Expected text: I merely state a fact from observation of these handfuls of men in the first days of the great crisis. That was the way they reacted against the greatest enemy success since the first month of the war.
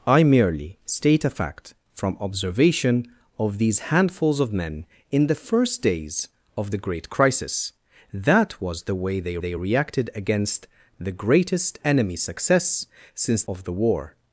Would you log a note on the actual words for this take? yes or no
yes